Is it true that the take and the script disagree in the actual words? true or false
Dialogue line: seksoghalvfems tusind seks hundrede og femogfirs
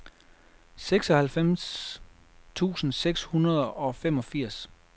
false